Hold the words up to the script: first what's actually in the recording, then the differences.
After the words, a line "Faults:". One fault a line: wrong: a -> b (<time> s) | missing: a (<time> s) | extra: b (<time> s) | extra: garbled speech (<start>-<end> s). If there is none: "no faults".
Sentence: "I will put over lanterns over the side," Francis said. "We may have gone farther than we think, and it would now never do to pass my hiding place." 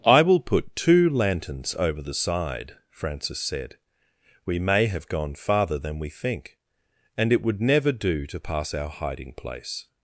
"I will put two lanterns over the side," Francis said. "We may have gone farther than we think, and it would never do to pass our hiding place."
Faults:
wrong: over -> two (0.8 s)
missing: now (7.6 s)
wrong: my -> our (8.7 s)